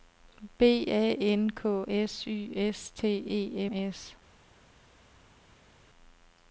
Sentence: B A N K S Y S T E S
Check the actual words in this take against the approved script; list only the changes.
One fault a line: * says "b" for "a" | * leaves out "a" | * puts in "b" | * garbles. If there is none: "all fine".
all fine